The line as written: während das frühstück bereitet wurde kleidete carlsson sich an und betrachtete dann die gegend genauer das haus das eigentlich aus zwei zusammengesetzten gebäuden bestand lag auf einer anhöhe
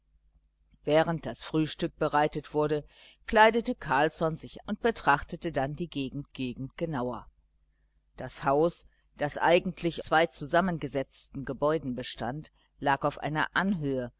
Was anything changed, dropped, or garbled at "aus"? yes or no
yes